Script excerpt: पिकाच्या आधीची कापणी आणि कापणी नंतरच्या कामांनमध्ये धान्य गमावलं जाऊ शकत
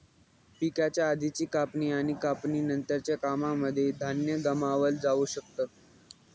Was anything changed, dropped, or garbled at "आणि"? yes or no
no